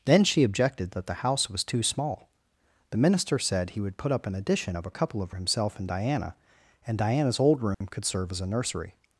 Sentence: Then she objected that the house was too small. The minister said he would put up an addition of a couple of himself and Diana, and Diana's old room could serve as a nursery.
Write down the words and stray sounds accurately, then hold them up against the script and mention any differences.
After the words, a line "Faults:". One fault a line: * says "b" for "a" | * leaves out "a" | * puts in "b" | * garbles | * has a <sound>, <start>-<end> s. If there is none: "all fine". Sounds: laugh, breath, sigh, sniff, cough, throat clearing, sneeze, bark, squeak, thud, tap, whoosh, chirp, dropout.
Then she objected that the house was too small. The minister said he would put up an addition of a couple of himself and Diana, and Diana's old room could serve as a nursery.
Faults:
* has a dropout, 7.7-7.8 s